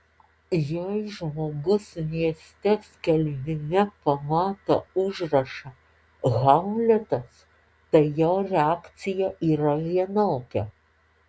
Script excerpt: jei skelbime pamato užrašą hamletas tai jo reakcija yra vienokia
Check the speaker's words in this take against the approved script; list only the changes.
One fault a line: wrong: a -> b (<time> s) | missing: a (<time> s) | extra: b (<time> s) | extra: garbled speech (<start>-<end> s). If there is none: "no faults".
extra: žmogus mieste (1.1 s)